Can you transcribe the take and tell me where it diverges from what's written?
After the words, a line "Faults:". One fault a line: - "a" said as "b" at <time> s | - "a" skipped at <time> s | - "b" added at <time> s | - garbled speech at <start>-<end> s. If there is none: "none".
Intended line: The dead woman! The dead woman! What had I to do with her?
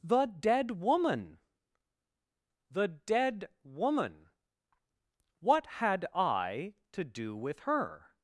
The dead woman! The dead woman! What had I to do with her?
Faults:
none